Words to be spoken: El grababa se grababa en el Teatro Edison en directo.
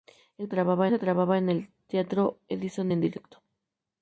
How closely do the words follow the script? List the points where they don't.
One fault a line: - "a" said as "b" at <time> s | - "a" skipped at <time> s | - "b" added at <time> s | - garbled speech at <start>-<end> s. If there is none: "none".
none